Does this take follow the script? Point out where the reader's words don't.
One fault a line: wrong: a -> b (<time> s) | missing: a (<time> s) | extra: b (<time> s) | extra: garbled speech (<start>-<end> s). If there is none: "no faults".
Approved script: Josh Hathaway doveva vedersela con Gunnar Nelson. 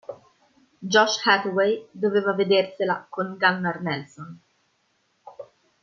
no faults